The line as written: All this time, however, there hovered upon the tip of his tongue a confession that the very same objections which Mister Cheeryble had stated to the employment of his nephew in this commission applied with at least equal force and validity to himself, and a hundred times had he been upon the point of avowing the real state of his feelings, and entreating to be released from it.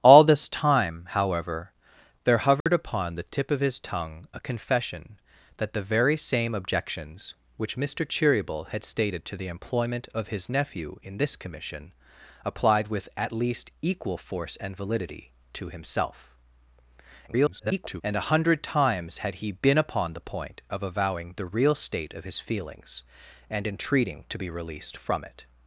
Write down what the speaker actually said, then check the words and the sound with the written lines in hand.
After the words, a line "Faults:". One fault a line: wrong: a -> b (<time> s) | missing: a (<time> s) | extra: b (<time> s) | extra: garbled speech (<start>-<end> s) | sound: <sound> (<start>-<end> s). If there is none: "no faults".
All this time, however, there hovered upon the tip of his tongue a confession that the very same objections which Mister Cheeryble had stated to the employment of his nephew in this commission applied with at least equal force and validity to himself, [garbled] and a hundred times had he been upon the point of avowing the real state of his feelings, and entreating to be released from it.
Faults:
sound: dropout (2.6-2.7 s)
extra: garbled speech (17.3-18.0 s)